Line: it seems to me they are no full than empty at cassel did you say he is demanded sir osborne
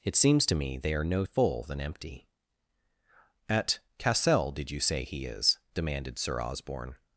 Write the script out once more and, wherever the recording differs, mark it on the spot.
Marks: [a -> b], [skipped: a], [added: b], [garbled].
it seems to me they are no full than empty at cassel did you say he is demanded sir osborne